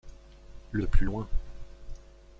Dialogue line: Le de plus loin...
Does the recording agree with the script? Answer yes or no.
yes